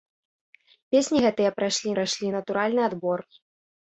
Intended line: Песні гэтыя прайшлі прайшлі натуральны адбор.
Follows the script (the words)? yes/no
yes